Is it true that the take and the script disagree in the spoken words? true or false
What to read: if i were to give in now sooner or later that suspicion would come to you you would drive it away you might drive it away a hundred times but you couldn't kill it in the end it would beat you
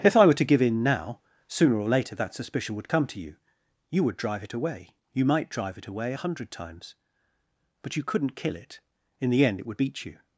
false